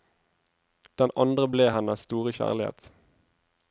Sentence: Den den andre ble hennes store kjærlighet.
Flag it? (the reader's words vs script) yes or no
yes